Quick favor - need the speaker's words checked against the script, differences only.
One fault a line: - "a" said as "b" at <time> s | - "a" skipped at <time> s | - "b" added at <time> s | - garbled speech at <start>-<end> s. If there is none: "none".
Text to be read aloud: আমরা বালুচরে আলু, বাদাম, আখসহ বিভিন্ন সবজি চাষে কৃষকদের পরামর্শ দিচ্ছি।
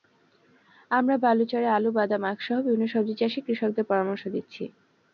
none